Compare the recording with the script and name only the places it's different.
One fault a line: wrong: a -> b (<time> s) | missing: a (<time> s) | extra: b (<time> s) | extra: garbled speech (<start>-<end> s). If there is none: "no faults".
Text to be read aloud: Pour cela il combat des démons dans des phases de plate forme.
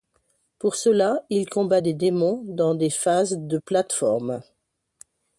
no faults